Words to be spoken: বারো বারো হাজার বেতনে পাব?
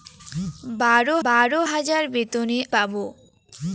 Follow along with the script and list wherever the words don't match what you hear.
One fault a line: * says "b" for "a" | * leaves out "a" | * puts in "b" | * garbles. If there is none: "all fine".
all fine